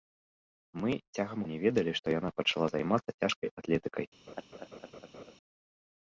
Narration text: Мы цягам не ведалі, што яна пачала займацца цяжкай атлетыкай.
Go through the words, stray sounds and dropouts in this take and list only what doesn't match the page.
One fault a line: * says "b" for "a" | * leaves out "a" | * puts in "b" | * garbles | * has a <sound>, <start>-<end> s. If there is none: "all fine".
* has a laugh, 4.3-5.4 s